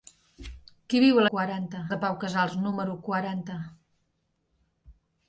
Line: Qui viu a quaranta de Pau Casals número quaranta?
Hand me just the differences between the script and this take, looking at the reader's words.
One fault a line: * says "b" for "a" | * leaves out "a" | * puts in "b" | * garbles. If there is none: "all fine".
all fine